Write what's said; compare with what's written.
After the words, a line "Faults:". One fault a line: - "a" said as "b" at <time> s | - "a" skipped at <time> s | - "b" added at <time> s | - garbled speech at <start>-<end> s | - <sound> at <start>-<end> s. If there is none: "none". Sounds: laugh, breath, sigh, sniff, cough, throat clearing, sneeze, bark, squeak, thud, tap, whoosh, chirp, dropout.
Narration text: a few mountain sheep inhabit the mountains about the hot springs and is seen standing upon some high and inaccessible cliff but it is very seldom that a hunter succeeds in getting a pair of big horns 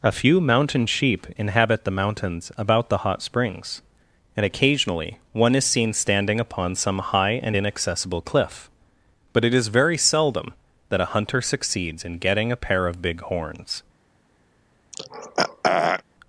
a few mountain sheep inhabit the mountains about the hot springs and occasionally one is seen standing upon some high and inaccessible cliff but it is very seldom that a hunter succeeds in getting a pair of big horns
Faults:
- "occasionally one" added at 4.4 s
- throat clearing at 14.9-16.0 s